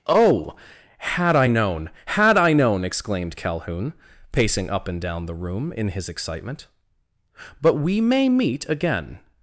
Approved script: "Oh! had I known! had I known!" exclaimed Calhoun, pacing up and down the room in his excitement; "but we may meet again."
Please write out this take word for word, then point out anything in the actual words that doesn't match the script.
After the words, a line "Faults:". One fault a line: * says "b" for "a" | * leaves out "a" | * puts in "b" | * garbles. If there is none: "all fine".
"Oh! had I known! had I known!" exclaimed Calhoun, pacing up and down the room in his excitement; "but we may meet again."
Faults:
all fine